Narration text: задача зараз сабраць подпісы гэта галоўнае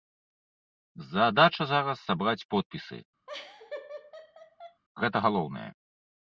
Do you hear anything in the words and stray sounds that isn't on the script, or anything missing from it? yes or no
yes